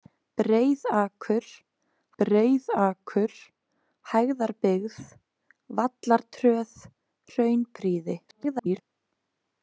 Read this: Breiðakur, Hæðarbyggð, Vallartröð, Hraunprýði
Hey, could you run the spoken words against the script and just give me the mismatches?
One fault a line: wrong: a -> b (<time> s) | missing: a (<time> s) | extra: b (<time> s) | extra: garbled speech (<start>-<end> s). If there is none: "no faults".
extra: breiðakur (2.2 s)
extra: garbled speech (8.3-8.8 s)